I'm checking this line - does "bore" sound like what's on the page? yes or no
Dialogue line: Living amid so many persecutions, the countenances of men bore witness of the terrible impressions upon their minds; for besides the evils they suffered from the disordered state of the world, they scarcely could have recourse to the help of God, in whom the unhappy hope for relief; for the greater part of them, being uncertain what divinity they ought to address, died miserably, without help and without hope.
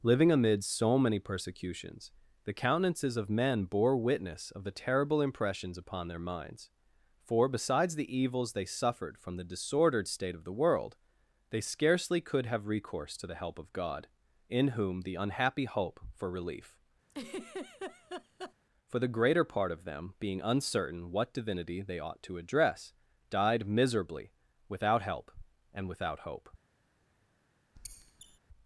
yes